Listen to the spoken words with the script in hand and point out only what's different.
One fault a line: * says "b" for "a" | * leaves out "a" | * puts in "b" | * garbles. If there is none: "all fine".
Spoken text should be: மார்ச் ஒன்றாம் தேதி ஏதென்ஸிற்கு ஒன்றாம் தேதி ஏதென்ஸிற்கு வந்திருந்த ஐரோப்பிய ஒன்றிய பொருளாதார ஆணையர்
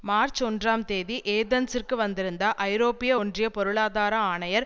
* leaves out "ஒன்றாம் தேதி ஏதென்ஸிற்கு"